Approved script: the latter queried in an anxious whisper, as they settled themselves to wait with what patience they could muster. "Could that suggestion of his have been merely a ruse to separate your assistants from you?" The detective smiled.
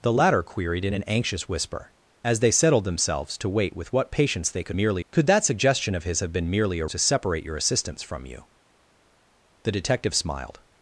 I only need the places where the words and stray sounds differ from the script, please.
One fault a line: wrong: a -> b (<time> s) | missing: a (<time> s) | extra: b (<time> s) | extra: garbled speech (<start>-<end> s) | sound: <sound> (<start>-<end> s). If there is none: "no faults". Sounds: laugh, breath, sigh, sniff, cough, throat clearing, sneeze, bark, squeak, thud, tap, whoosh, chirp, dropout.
wrong: muster -> merely (4.8 s)
missing: ruse (6.9 s)